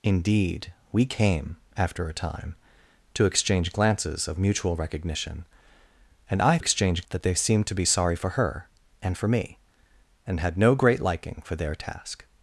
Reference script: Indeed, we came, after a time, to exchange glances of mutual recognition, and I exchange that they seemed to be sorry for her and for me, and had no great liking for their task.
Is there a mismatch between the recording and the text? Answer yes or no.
no